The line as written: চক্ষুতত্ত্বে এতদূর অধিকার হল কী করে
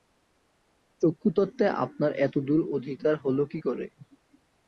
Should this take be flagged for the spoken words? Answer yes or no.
yes